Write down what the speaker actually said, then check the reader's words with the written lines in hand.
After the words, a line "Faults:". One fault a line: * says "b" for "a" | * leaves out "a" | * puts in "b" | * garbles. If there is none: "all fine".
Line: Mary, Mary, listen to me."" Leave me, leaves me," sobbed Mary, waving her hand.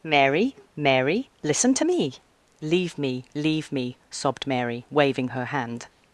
Mary, Mary, listen to me."" Leave me, leave me," sobbed Mary, waving her hand.
Faults:
* says "leave" for "leaves"